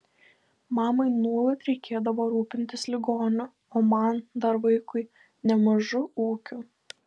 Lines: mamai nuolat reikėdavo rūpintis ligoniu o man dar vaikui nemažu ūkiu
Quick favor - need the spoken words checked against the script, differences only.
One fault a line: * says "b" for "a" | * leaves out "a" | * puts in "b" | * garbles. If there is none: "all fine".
all fine